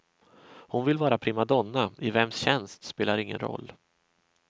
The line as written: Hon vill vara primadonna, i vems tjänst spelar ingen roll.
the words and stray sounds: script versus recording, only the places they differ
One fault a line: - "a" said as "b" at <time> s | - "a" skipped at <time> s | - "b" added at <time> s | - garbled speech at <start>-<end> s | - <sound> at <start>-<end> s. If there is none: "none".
none